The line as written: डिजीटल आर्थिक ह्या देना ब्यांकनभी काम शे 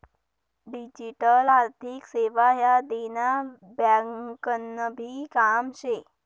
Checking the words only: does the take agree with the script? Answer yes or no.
no